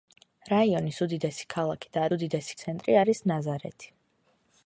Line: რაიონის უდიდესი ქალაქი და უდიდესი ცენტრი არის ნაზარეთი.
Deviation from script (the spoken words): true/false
false